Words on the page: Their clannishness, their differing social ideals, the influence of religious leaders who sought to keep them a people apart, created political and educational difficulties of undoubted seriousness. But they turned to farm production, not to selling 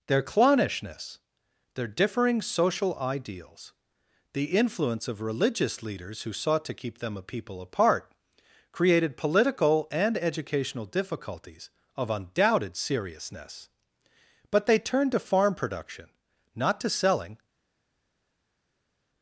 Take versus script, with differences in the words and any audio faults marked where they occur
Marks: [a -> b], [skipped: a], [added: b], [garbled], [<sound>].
Their clannishness, their differing social ideals, the influence of religious leaders who sought to keep them a people apart, created political and educational difficulties of undoubted seriousness. But they turned to farm production, not to selling